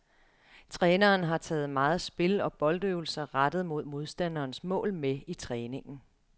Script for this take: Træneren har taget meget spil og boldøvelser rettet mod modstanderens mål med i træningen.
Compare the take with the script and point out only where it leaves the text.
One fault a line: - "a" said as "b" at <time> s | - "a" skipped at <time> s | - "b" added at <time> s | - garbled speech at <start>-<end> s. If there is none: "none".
none